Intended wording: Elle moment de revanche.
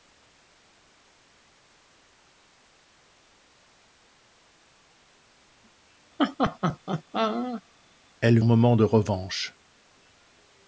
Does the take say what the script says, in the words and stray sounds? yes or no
no